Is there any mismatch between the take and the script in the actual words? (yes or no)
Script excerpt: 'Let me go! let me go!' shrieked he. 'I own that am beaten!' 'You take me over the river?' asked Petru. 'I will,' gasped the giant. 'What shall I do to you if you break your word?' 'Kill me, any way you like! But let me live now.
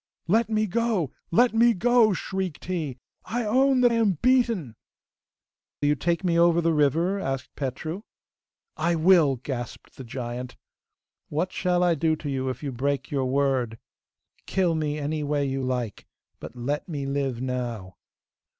no